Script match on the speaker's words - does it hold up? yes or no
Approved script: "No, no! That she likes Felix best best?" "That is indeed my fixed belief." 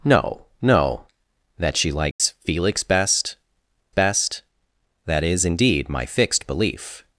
yes